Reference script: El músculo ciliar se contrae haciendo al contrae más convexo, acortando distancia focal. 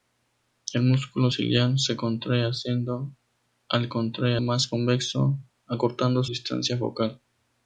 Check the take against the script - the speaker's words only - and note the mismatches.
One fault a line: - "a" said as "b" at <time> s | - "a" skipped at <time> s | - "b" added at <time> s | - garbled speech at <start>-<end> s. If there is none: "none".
none